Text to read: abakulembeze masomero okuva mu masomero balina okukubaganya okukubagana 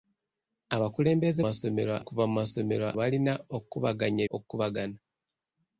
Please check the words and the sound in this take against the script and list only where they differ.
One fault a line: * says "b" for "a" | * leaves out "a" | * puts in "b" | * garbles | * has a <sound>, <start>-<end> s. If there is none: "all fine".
all fine